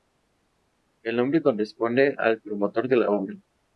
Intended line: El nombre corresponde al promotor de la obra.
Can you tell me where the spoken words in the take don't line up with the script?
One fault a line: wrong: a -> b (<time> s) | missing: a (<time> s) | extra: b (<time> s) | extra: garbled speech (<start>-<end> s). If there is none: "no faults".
no faults